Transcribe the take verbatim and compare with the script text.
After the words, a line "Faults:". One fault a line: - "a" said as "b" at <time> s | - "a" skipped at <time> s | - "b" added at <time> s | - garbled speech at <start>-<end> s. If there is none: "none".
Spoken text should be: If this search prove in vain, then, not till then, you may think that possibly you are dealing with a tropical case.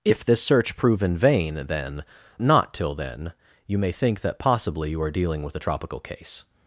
If this search prove in vain, then, not till then, you may think that possibly you are dealing with a tropical case.
Faults:
none